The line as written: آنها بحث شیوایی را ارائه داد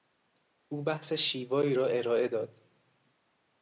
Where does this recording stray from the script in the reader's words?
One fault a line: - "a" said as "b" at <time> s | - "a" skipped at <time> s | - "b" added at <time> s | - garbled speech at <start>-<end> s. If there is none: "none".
- "آنها" said as "او" at 0.7 s